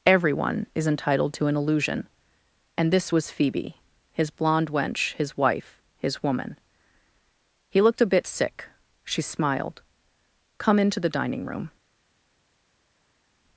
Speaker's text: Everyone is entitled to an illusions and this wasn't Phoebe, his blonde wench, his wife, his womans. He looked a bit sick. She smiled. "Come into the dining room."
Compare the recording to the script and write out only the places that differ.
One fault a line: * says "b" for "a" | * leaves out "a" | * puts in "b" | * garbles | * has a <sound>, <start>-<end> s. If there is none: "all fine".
* says "illusion" for "illusions"
* says "was" for "wasn't"
* says "woman" for "womans"